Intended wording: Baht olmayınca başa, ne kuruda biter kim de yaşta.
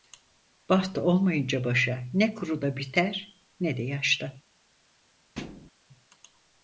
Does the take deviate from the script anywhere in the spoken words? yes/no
yes